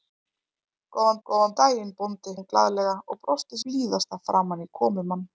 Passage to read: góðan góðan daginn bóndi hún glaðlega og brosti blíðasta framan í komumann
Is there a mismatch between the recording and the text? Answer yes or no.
no